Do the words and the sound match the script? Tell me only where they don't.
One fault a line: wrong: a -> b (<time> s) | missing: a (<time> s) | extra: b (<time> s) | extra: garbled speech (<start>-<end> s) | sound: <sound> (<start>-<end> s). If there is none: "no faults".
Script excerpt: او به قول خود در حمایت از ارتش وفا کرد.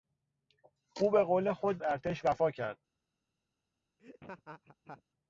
missing: در حمایت از (1.8 s)
sound: laugh (4.0-5.0 s)